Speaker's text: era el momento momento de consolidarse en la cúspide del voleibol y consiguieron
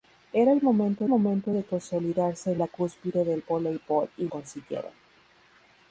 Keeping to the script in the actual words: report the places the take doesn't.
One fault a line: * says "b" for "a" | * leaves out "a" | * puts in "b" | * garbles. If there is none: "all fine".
all fine